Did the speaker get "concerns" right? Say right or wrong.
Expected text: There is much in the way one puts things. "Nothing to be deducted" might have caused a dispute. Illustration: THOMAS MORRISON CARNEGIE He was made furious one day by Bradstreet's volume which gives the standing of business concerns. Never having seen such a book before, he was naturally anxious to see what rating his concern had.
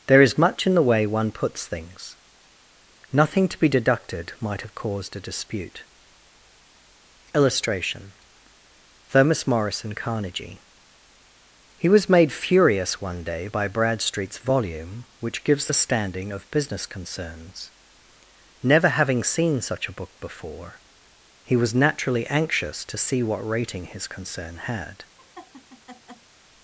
right